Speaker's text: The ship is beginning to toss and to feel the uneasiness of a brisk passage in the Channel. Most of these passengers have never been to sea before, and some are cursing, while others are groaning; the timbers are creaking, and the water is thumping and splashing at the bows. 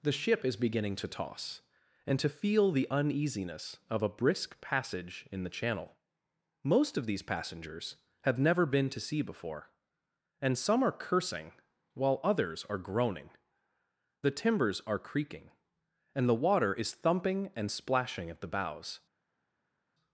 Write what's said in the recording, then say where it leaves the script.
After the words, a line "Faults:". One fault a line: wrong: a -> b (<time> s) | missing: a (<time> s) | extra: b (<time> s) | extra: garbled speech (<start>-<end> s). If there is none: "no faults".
The ship is beginning to toss and to feel the uneasiness of a brisk passage in the Channel. Most of these passengers have never been to sea before, and some are cursing, while others are groaning; the timbers are creaking, and the water is thumping and splashing at the bows.
Faults:
no faults